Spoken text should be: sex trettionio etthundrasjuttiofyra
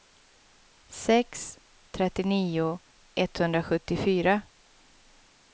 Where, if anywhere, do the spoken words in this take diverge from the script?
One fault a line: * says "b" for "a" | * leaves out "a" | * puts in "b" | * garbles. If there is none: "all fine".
all fine